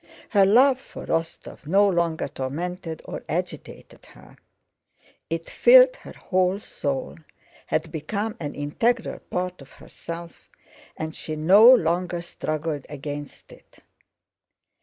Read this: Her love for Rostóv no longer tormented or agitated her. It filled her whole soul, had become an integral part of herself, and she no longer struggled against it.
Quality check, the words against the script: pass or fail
pass